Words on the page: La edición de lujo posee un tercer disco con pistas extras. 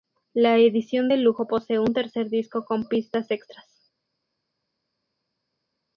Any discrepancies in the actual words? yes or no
no